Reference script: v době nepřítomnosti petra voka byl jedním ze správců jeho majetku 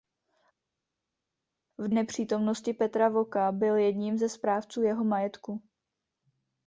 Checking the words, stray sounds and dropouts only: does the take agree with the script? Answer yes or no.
no